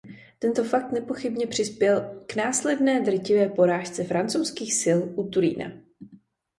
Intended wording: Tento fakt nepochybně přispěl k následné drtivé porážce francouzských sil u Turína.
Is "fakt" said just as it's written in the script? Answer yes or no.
yes